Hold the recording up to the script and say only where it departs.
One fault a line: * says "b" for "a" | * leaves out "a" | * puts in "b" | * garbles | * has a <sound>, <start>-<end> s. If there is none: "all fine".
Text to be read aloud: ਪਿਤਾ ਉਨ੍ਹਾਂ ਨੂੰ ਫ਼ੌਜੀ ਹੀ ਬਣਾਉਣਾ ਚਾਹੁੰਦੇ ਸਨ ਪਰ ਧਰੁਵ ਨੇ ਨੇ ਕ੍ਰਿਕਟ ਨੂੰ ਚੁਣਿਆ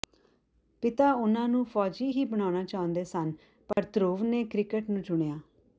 * has a dropout, 3.7-3.8 s
* leaves out "ਨੇ"